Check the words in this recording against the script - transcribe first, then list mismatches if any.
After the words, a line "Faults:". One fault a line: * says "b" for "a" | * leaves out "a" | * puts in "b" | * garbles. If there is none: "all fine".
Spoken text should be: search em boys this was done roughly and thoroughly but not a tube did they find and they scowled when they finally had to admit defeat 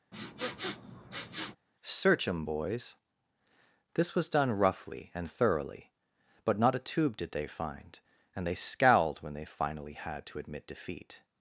search em boys this was done roughly and thoroughly but not a tube did they find and they scowled when they finally had to admit defeat
Faults:
all fine